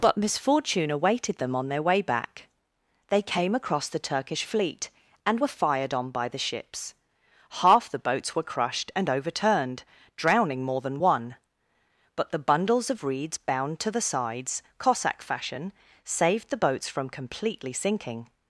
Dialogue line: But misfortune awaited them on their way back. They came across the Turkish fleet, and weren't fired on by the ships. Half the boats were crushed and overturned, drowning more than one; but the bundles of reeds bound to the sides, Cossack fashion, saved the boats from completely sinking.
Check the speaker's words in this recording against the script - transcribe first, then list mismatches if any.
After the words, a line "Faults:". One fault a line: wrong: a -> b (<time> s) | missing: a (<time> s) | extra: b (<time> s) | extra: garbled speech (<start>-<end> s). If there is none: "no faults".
But misfortune awaited them on their way back. They came across the Turkish fleet, and were fired on by the ships. Half the boats were crushed and overturned, drowning more than one; but the bundles of reeds bound to the sides, Cossack fashion, saved the boats from completely sinking.
Faults:
wrong: weren't -> were (5.4 s)